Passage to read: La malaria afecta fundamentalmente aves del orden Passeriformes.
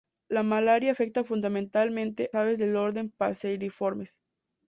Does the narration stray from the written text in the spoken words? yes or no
no